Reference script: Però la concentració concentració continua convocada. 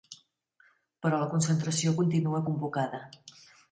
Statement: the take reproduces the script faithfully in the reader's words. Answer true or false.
false